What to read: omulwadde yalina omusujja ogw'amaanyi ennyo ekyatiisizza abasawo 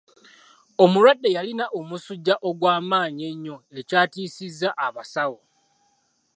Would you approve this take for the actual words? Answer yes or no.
yes